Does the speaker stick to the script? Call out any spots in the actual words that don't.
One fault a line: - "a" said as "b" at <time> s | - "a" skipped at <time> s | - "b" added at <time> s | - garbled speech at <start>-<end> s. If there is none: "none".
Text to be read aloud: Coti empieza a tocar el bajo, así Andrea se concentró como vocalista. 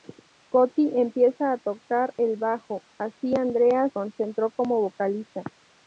- "se" skipped at 3.9 s